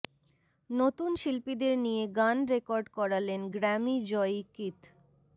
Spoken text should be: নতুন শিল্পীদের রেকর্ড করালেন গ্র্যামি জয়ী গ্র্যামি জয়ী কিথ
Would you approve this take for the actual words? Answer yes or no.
no